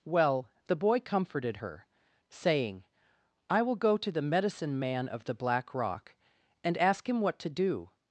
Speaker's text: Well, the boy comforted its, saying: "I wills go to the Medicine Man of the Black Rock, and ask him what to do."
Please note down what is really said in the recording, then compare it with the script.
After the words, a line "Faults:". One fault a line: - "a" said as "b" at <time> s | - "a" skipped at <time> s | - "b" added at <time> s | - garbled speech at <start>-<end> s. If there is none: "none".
Well, the boy comforted her, saying: "I will go to the Medicine Man of the Black Rock, and ask him what to do."
Faults:
- "its" said as "her" at 1.5 s
- "wills" said as "will" at 3.6 s